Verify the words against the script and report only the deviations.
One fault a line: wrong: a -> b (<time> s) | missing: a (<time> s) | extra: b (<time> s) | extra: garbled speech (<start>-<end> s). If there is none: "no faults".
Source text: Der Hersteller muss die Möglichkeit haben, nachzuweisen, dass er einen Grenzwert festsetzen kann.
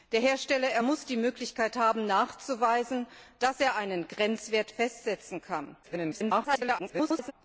extra: garbled speech (5.8-7.3 s)